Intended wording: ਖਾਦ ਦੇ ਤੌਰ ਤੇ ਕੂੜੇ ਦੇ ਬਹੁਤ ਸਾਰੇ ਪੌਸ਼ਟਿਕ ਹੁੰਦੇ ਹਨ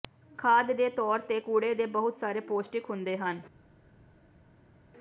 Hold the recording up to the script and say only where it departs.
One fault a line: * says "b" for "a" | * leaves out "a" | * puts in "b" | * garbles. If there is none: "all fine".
all fine